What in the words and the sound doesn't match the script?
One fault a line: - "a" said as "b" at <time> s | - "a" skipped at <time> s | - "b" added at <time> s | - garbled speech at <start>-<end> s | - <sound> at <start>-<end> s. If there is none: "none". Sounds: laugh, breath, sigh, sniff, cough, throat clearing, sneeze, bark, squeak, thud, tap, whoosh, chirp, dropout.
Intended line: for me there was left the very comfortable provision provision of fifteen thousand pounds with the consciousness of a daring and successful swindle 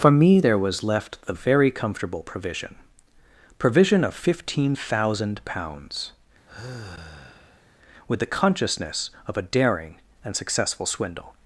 - sigh at 6.5-7.7 s